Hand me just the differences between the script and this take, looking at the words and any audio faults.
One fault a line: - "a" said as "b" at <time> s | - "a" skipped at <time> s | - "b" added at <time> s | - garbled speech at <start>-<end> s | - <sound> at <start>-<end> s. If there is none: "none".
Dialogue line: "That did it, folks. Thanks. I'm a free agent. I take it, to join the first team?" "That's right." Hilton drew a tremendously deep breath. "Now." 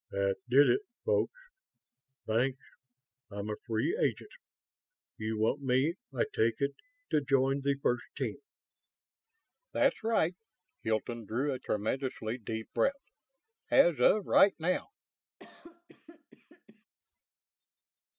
- "You want me" added at 5.2 s
- "As of right" added at 13.7 s
- cough at 15.4-16.9 s